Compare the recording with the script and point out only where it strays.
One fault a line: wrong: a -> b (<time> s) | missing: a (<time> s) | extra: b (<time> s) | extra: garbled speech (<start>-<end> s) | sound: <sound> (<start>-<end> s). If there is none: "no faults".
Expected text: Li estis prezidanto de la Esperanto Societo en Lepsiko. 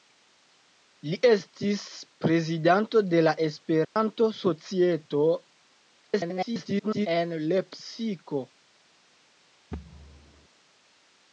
sound: dropout (3.8-4.0 s)
extra: garbled speech (6.0-7.1 s)
sound: thud (9.7-10.5 s)